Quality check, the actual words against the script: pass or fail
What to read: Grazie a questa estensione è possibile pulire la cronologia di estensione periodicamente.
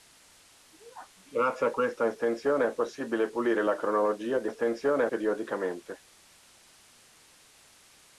pass